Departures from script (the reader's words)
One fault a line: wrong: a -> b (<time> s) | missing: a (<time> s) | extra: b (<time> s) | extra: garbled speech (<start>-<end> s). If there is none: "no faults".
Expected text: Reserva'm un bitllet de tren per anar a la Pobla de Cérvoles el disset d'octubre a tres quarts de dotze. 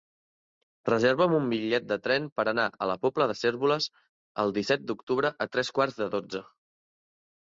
no faults